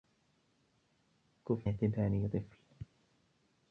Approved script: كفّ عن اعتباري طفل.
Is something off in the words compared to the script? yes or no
yes